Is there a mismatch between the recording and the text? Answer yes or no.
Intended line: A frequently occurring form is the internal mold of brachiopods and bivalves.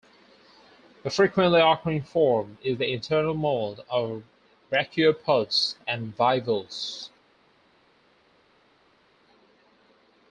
no